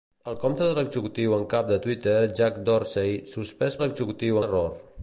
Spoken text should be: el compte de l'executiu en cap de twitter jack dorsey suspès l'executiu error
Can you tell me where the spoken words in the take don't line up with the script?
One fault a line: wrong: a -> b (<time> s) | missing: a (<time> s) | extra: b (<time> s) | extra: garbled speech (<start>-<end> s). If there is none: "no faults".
no faults